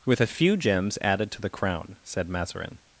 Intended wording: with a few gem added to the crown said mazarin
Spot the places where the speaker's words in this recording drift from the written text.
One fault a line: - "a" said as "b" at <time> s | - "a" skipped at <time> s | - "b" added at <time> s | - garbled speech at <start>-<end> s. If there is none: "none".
- "gem" said as "gems" at 0.6 s